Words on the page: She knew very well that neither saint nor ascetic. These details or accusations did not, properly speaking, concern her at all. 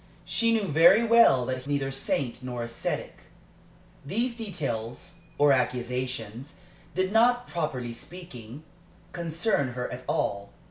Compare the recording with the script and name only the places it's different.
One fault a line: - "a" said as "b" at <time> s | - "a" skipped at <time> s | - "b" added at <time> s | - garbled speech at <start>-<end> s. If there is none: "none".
none